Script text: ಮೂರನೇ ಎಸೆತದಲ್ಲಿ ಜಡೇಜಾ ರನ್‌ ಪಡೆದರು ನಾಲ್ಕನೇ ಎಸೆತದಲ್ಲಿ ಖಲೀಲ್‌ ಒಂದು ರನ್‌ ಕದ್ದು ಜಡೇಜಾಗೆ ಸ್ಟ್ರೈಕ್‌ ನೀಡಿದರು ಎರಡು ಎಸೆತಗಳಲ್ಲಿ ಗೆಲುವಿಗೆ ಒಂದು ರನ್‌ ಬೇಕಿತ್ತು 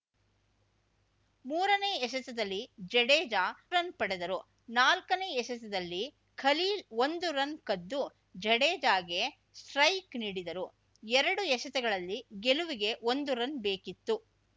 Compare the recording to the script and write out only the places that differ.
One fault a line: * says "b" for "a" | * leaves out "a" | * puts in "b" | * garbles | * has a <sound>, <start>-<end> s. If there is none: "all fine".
all fine